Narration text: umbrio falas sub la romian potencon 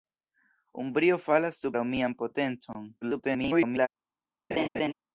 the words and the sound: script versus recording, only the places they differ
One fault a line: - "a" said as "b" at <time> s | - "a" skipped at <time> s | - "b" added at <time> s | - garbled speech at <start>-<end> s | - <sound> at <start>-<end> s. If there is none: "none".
- "la" skipped at 1.8 s
- garbled speech at 3.0-3.9 s
- laugh at 4.5-4.9 s